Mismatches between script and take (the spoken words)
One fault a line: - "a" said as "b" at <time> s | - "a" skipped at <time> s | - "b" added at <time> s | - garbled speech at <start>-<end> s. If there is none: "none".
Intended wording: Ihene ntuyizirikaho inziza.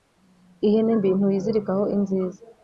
- "mbi" added at 1.0 s